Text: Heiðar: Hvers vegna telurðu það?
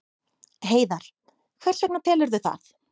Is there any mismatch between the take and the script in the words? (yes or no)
no